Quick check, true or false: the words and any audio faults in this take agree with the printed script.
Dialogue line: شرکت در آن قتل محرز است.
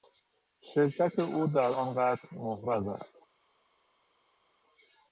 false